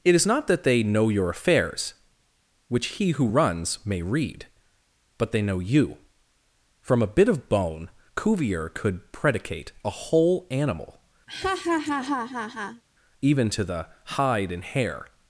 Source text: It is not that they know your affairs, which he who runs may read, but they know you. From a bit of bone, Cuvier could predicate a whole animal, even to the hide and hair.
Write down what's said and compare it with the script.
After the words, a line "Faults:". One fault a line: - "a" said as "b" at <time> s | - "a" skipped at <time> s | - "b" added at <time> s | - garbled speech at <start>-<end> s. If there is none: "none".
It is not that they know your affairs, which he who runs may read, but they know you. From a bit of bone, Cuvier could predicate a whole animal, even to the hide and hair.
Faults:
none